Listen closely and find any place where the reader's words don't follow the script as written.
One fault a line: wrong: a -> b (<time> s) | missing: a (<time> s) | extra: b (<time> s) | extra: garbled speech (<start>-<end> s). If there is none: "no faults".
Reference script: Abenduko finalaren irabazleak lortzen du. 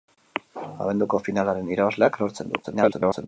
extra: garbled speech (2.6-3.3 s)